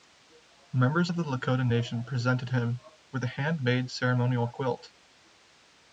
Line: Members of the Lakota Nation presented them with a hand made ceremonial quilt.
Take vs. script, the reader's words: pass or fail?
fail